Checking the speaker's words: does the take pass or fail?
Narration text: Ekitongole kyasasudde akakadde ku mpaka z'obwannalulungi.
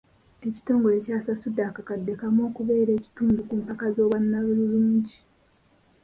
fail